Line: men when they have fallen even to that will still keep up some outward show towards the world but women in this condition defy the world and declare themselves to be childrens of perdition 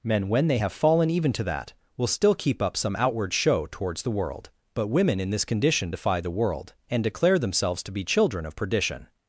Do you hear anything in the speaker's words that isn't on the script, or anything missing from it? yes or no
yes